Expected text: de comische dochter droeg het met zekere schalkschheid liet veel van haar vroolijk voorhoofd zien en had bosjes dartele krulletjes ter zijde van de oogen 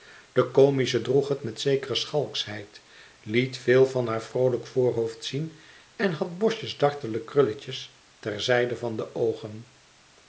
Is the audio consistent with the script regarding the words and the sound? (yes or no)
no